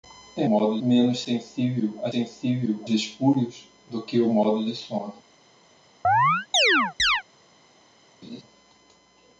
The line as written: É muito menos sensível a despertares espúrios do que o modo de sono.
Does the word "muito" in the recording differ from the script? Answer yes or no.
yes